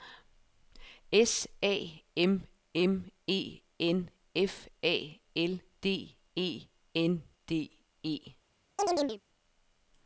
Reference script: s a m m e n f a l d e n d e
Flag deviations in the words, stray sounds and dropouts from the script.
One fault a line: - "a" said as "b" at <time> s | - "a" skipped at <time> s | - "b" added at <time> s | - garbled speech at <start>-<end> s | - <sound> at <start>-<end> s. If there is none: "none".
- chirp at 8.8-9.2 s